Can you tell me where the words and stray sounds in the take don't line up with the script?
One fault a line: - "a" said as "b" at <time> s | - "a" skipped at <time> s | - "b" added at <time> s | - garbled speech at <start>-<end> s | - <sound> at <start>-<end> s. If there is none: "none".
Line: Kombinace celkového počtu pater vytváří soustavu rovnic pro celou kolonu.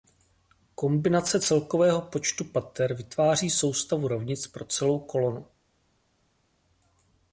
none